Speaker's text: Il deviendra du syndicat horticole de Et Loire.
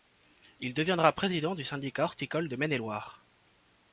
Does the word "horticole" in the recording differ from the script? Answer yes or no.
no